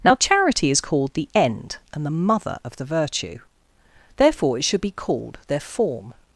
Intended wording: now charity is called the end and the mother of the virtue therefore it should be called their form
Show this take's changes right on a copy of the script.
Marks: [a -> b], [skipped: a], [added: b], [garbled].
now charity is called the end and the mother of the virtue therefore it should be called their form